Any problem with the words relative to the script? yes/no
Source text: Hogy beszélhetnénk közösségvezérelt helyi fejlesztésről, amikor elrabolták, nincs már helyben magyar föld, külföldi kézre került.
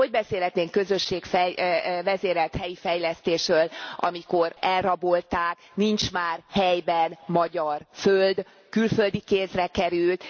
no